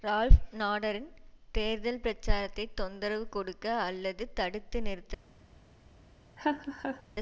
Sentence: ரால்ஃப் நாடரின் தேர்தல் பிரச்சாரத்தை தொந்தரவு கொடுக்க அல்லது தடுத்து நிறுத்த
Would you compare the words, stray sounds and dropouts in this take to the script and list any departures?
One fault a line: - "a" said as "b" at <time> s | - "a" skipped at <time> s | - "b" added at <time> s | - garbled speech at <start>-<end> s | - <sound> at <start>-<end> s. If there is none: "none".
- laugh at 6.4-7.0 s